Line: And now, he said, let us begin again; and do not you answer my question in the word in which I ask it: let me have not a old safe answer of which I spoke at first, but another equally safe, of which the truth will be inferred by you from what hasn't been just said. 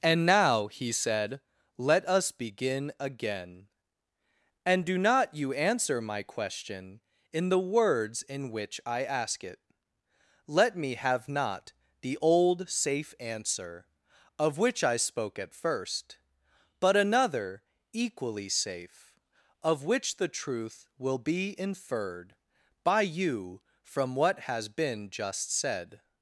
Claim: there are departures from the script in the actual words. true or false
true